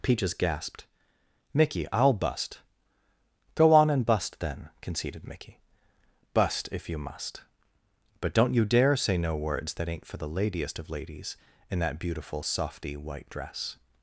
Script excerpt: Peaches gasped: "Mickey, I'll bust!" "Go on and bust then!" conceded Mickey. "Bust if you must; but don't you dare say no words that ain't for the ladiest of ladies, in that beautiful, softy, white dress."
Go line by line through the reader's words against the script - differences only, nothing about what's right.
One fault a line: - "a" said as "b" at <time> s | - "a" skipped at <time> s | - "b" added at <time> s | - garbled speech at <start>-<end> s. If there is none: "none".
none